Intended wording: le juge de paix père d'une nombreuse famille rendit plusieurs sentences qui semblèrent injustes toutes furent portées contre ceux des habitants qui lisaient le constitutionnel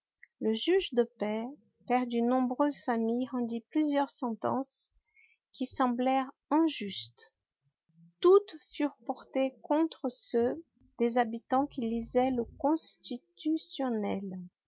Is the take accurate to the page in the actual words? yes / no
yes